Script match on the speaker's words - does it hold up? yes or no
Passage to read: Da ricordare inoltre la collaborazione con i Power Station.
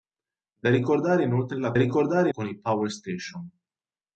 no